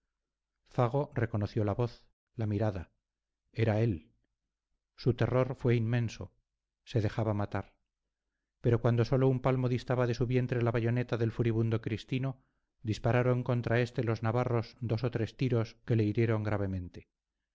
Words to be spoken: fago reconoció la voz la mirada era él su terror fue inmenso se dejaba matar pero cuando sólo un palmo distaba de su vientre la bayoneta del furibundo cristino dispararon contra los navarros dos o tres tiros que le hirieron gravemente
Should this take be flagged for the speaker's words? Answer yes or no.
yes